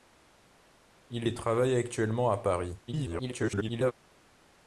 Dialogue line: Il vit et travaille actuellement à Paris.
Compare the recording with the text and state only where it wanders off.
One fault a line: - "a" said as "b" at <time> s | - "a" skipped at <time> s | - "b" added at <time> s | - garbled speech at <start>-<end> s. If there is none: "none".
- "vit" skipped at 1.2 s
- garbled speech at 2.9-3.9 s